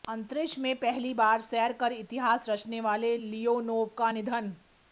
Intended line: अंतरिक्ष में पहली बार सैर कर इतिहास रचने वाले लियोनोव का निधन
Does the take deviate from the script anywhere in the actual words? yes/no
no